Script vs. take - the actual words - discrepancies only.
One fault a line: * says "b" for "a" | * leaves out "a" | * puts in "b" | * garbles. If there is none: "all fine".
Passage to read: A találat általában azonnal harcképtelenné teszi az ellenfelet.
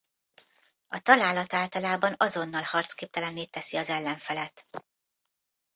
all fine